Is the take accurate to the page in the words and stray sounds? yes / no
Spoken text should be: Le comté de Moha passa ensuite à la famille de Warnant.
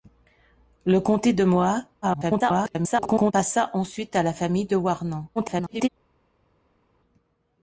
no